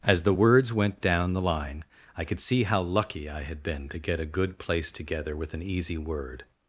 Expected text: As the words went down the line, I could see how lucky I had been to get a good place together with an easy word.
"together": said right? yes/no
yes